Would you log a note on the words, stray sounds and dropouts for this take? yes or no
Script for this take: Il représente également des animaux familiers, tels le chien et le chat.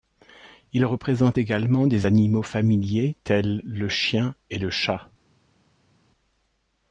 no